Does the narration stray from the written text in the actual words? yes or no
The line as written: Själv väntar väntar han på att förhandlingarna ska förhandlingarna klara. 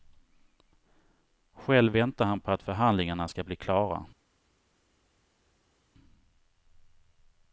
yes